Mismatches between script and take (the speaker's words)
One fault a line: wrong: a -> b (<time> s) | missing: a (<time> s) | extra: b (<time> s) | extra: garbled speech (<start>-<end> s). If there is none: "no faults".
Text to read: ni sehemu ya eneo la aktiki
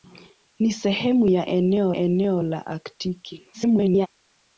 extra: eneo (1.9 s)
extra: garbled speech (3.5-4.1 s)